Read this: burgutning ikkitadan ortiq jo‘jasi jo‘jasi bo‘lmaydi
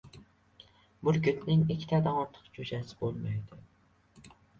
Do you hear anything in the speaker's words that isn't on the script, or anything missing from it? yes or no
yes